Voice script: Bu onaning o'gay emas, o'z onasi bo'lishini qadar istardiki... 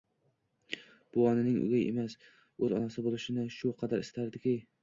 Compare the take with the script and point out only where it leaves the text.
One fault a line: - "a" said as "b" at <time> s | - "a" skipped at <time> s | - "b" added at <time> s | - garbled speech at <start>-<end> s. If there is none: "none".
- "shu" added at 3.6 s